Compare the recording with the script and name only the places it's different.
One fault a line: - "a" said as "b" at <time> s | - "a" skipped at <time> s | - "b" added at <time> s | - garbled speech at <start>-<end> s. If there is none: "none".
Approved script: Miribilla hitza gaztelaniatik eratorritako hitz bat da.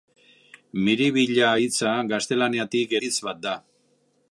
- "eratorritako" skipped at 3.0 s